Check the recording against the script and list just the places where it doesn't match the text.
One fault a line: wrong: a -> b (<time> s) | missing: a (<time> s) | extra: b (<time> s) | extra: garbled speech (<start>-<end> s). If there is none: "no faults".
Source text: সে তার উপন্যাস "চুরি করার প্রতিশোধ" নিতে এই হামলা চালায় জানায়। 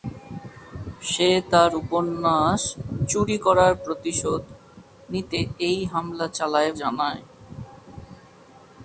no faults